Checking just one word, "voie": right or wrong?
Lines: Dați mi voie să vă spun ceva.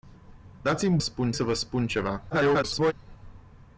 wrong